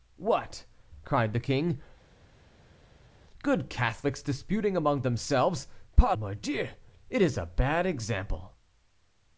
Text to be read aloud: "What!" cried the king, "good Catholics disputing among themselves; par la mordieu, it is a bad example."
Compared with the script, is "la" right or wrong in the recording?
wrong